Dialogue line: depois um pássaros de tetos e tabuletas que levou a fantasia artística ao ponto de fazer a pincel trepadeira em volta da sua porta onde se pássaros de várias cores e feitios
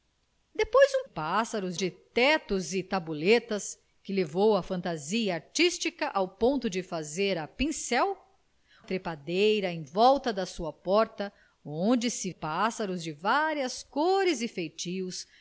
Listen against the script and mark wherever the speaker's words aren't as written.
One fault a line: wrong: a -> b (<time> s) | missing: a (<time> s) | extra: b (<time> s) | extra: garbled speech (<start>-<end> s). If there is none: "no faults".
no faults